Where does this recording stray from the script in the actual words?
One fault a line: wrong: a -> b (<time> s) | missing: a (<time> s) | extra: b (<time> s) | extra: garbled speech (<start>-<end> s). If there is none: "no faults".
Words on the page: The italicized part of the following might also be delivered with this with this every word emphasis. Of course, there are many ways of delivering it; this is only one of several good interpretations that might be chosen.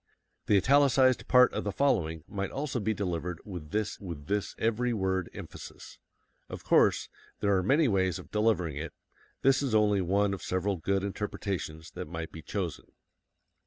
no faults